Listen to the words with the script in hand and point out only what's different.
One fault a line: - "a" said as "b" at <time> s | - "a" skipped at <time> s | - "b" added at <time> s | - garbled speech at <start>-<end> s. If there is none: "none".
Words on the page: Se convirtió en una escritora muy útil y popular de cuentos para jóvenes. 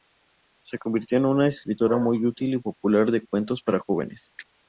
none